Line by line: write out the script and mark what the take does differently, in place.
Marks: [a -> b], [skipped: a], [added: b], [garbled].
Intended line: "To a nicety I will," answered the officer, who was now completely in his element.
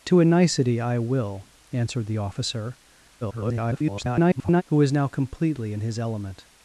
"To a nicety I will," answered the officer, [garbled] who was now completely in his element.